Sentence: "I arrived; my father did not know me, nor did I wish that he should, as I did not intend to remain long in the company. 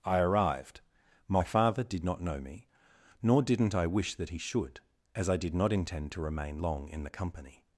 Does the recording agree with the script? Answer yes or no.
no